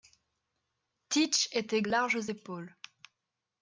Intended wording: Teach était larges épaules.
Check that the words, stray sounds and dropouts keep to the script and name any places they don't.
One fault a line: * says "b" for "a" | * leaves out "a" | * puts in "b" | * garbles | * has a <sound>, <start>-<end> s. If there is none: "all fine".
all fine